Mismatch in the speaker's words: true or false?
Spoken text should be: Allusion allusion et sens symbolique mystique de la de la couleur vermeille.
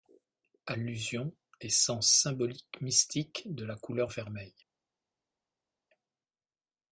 true